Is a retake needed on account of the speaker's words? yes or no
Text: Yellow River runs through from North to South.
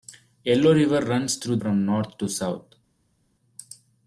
no